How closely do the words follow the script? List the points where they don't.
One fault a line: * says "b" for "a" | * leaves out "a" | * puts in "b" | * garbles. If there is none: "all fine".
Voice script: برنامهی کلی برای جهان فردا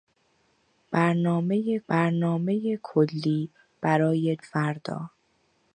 * puts in "برنامهی"
* leaves out "جهان"